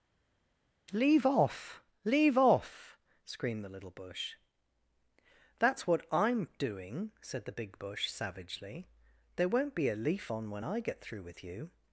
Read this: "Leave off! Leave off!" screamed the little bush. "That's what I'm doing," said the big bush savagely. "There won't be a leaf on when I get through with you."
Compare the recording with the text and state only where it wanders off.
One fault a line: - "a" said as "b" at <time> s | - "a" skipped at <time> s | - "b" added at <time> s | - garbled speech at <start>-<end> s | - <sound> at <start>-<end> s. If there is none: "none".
none